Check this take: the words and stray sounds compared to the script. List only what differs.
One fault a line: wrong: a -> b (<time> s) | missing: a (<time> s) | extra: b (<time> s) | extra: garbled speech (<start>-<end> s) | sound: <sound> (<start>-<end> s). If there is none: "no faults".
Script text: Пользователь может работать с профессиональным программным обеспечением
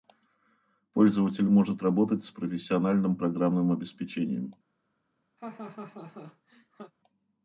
sound: laugh (5.4-6.9 s)